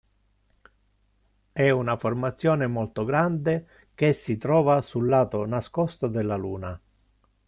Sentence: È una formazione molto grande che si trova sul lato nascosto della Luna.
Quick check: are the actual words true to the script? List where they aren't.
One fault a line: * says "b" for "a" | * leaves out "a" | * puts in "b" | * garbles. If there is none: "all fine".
all fine